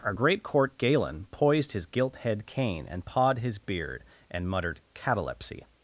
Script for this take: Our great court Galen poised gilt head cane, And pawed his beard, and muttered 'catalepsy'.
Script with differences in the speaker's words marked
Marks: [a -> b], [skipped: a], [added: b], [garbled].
Our great court Galen poised [added: his] gilt head cane, And pawed his beard, and muttered 'catalepsy'.